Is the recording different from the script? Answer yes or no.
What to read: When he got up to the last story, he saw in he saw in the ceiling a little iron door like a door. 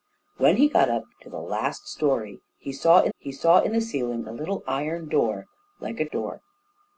no